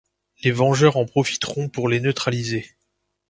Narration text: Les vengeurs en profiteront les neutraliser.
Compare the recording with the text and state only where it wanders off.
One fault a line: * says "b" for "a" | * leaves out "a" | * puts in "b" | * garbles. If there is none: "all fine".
* puts in "pour"